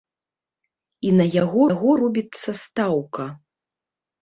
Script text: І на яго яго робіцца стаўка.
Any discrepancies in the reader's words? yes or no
no